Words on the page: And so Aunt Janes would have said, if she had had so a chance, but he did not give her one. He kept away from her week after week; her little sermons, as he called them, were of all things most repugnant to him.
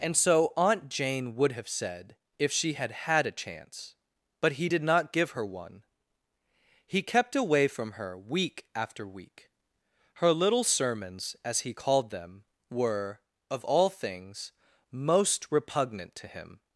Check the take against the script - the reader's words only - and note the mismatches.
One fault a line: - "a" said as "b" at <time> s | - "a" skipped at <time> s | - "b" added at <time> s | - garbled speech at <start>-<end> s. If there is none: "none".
- "Janes" said as "Jane" at 0.9 s
- "so" skipped at 3.3 s